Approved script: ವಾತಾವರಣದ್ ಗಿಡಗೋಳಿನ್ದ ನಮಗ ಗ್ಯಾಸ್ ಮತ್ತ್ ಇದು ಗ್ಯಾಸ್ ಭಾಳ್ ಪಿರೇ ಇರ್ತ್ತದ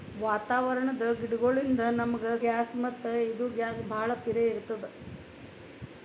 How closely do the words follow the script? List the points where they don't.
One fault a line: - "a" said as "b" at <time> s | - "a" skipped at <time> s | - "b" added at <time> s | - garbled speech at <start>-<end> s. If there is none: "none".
none